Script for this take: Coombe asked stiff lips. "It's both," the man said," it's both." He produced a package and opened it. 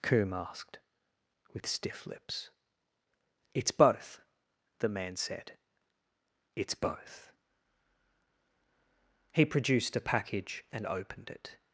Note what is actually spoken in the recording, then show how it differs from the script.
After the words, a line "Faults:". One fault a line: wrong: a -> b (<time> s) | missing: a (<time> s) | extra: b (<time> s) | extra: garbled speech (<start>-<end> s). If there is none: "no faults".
Coombe asked with stiff lips. "It's both," the man said," it's both." He produced a package and opened it.
Faults:
extra: with (1.5 s)